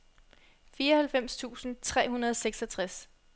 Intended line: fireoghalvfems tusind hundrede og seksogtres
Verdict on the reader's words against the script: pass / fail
fail